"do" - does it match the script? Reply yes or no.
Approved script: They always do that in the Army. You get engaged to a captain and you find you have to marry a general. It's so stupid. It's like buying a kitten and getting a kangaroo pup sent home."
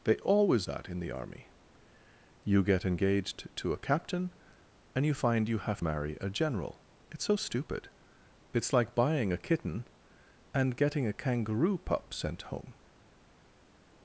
no